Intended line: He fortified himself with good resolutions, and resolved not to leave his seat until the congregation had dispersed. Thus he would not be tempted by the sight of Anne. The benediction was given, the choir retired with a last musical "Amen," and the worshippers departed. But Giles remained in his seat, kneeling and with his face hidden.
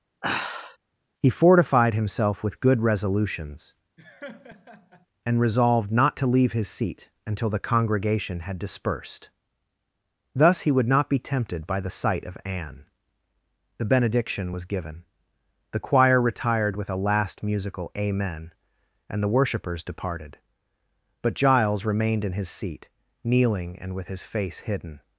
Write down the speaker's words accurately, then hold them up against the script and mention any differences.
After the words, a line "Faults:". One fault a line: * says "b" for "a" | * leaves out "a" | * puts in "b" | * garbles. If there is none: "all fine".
He fortified himself with good resolutions, and resolved not to leave his seat until the congregation had dispersed. Thus he would not be tempted by the sight of Anne. The benediction was given, the choir retired with a last musical "Amen," and the worshippers departed. But Giles remained in his seat, kneeling and with his face hidden.
Faults:
all fine